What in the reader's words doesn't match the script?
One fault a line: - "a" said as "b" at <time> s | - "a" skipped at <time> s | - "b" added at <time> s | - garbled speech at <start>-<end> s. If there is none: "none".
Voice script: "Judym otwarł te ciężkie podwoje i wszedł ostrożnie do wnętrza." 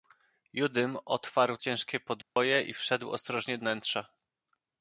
- "te" skipped at 1.6 s
- "do" skipped at 3.6 s